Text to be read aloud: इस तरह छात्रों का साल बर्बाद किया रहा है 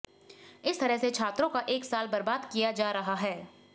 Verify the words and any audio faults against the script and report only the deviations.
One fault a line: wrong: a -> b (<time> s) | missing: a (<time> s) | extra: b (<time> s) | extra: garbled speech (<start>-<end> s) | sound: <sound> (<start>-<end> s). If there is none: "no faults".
extra: से (1.0 s)
extra: एक (1.7 s)
extra: जा (2.7 s)